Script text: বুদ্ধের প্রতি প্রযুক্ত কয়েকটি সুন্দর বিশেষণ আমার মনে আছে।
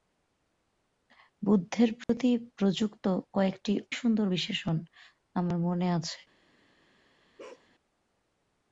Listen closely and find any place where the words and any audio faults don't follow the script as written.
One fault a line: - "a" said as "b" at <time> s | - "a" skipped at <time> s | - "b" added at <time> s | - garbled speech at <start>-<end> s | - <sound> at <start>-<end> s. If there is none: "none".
- dropout at 2.0-2.1 s
- bark at 7.4-7.7 s